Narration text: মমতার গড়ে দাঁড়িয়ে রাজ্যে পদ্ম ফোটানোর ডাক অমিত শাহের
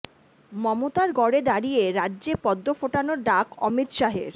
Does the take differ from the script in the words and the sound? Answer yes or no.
no